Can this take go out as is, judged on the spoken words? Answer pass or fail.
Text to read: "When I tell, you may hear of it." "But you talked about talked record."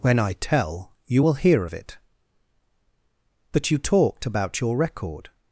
fail